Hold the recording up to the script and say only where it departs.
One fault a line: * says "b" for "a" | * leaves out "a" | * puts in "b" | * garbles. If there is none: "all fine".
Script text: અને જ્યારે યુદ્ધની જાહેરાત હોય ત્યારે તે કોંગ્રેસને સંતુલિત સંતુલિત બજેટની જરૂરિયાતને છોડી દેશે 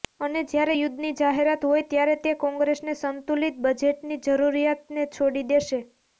* leaves out "સંતુલિત"